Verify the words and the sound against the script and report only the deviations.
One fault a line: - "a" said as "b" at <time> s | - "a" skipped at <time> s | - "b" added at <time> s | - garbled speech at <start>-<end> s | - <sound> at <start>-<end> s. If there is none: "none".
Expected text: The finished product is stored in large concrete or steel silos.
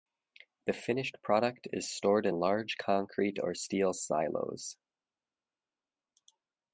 none